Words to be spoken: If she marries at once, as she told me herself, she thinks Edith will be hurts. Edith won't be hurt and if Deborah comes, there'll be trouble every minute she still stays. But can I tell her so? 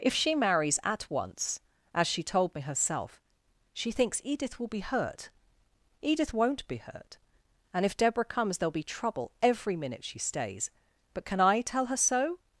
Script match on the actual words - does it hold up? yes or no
no